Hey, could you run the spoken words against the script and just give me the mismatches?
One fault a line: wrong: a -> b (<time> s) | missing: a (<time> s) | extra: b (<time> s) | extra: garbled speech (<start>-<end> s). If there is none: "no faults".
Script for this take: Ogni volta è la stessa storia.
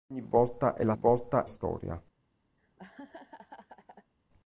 wrong: stessa -> volta (0.9 s)